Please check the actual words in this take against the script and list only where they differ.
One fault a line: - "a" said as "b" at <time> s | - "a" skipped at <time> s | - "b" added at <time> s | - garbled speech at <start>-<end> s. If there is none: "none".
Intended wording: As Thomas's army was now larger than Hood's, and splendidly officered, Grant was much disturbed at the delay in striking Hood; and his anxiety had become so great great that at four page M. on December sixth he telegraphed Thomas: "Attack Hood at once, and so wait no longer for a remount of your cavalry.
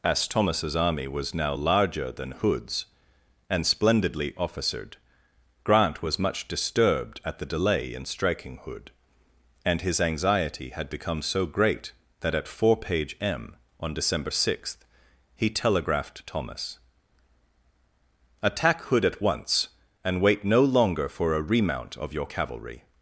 - "great" skipped at 11.9 s
- "so" skipped at 20.2 s